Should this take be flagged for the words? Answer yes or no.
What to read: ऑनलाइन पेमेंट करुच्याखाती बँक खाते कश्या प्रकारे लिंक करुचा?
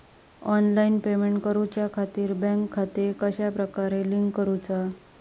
no